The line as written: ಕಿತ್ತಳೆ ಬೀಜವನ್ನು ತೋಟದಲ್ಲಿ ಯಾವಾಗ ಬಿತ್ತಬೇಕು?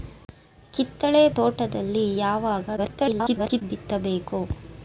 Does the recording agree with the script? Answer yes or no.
no